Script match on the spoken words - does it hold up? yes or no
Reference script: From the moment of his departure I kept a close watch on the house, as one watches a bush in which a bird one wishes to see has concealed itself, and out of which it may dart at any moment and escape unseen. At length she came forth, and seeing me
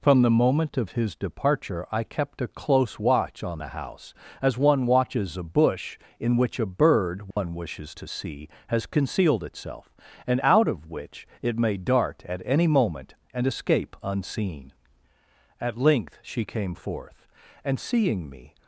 yes